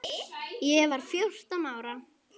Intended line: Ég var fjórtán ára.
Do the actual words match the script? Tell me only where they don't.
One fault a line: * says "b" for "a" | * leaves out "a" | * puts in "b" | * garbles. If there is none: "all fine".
all fine